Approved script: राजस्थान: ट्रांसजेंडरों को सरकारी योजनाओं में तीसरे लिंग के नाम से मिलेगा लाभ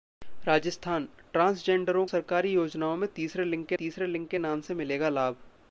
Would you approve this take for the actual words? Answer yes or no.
no